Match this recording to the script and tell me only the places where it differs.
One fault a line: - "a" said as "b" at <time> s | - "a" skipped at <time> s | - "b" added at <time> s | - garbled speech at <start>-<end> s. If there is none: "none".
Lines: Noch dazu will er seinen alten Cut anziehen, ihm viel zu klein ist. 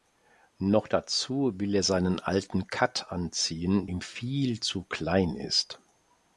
none